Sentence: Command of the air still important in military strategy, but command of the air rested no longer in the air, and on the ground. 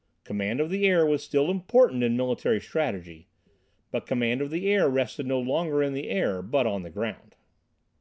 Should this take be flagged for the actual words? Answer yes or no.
yes